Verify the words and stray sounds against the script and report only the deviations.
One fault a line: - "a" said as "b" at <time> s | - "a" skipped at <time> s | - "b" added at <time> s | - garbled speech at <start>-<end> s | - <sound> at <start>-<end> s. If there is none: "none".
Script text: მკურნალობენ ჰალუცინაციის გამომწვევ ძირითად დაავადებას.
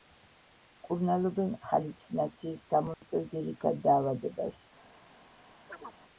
- dropout at 2.9-3.0 s
- chirp at 5.7-6.0 s